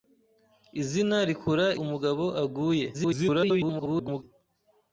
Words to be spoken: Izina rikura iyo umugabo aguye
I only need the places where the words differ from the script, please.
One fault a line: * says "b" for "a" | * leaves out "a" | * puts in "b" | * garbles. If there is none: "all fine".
* leaves out "iyo"
* garbles